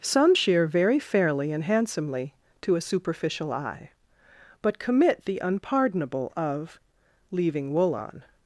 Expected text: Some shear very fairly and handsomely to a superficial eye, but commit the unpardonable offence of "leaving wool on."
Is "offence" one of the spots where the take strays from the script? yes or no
yes